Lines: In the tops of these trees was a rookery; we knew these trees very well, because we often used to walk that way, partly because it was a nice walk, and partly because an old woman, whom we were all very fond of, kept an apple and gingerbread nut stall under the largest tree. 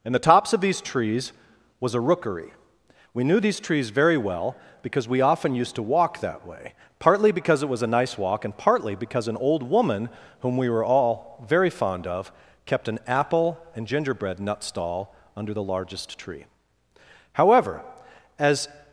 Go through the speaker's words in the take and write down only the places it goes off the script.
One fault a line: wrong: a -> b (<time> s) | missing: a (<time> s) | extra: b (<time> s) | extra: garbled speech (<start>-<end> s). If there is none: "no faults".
extra: However as (17.3 s)